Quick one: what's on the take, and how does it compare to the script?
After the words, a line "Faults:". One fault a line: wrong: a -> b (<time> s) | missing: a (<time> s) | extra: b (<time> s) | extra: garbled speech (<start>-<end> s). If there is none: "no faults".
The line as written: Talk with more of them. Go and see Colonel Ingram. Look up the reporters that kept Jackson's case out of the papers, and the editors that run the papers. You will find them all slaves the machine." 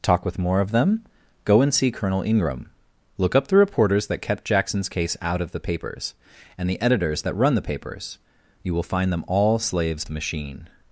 Talk with more of them. Go and see Colonel Ingram. Look up the reporters that kept Jackson's case out of the papers, and the editors that run the papers. You will find them all slaves the machine."
Faults:
no faults